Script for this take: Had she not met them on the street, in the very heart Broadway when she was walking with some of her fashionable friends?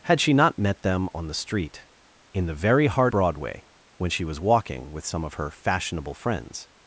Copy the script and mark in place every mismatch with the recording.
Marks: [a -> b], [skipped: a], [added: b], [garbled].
Had she not met them on the street, in the very heart Broadway when she was walking with some of her fashionable friends?